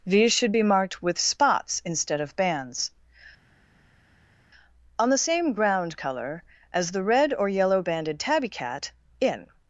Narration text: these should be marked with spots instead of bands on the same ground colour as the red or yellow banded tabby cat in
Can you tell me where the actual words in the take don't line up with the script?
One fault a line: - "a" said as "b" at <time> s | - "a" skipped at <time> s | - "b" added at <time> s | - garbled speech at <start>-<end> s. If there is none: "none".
none